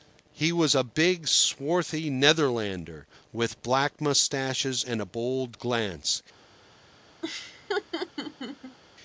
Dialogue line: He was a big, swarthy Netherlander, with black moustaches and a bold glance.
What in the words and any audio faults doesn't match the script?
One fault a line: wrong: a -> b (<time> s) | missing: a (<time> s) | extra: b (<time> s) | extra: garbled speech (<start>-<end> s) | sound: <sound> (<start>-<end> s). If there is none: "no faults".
sound: laugh (7.2-8.8 s)